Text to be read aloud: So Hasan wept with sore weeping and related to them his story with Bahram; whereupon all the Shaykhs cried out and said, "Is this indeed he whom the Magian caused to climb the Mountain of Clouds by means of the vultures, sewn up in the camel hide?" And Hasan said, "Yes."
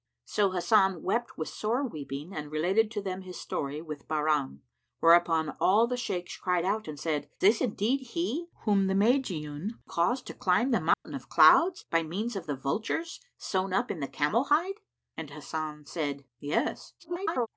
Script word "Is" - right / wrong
wrong